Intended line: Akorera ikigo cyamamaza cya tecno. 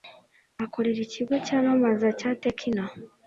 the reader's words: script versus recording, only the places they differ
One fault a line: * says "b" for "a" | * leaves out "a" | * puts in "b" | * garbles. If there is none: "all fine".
all fine